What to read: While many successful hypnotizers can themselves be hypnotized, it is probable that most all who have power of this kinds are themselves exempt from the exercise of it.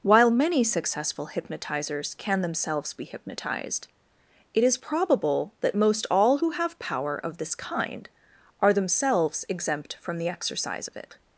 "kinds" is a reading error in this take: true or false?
true